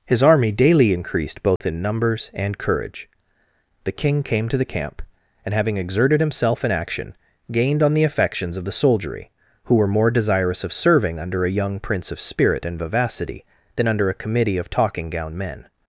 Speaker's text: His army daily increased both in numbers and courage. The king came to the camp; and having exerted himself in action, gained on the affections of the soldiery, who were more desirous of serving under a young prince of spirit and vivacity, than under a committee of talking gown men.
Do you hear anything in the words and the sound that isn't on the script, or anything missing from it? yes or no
yes